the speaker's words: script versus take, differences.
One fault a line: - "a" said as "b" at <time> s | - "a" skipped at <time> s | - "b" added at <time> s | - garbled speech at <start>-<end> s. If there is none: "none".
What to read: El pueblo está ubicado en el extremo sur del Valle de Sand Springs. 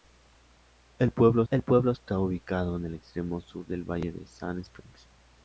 - "el pueblo" added at 1.5 s